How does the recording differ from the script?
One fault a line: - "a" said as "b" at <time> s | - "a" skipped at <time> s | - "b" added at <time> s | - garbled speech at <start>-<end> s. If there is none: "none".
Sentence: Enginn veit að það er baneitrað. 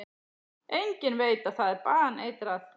none